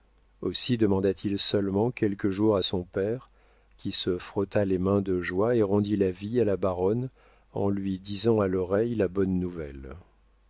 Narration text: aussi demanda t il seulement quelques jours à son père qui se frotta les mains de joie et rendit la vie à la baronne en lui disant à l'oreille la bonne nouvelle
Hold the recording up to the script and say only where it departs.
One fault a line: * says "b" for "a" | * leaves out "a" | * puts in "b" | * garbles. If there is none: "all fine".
all fine